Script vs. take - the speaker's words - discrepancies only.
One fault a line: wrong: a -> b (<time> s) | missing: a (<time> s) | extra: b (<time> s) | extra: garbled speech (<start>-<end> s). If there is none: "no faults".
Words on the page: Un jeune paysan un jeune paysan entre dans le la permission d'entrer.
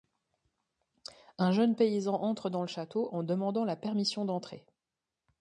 wrong: un jeune paysan entre dans le -> entre dans le château en demandant (2.1 s)